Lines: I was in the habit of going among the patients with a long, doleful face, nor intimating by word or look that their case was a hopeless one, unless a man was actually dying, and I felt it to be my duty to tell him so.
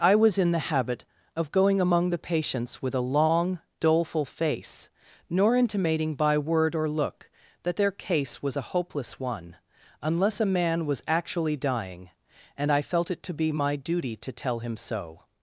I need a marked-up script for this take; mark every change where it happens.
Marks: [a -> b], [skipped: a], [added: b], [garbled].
I was in the habit of going among the patients with a long, doleful face, nor intimating by word or look that their case was a hopeless one, unless a man was actually dying, and I felt it to be my duty to tell him so.